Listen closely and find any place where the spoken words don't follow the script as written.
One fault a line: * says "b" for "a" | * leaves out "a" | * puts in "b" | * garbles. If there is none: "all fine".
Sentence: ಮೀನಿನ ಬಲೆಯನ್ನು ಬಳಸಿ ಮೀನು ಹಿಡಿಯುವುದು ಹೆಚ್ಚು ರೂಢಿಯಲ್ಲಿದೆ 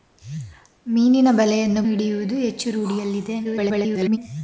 * leaves out "ಬಳಸಿ ಮೀನು"
* garbles